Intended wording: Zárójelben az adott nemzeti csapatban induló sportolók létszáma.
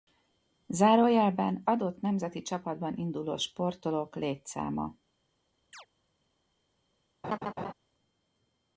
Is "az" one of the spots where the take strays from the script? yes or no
yes